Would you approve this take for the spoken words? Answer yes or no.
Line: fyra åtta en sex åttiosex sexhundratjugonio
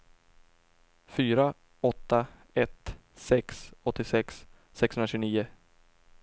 no